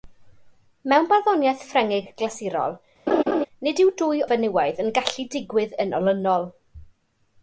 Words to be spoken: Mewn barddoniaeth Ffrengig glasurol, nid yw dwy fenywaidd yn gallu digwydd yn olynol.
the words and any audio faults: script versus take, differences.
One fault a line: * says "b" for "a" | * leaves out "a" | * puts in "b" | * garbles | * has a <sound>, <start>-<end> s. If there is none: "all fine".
* has a laugh, 3.1-3.5 s